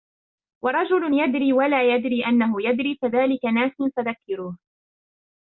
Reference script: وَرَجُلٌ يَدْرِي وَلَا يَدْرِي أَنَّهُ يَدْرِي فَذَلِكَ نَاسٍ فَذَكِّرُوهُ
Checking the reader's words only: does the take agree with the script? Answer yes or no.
yes